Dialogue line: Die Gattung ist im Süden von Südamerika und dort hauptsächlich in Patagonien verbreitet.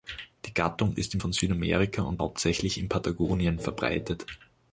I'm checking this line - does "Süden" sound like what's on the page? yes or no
no